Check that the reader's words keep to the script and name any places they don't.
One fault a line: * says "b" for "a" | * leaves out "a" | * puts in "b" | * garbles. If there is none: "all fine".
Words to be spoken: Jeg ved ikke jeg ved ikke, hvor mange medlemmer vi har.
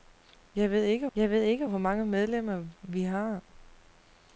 all fine